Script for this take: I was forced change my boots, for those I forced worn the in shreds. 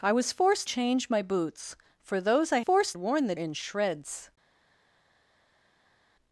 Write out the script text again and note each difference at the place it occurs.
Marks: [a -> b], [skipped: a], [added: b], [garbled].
I was forced change my boots, for those I forced worn the in shreds.